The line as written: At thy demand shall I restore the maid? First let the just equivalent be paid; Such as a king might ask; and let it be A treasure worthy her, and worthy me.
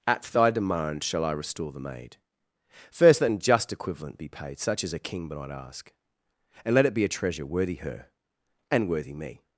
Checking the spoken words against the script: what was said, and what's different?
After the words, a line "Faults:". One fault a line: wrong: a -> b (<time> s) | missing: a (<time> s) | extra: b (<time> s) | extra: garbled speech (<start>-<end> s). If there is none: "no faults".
At thy demand shall I restore the maid? First let an just equivalent be paid; Such as a king might ask; and let it be A treasure worthy her, and worthy me.
Faults:
wrong: the -> an (3.3 s)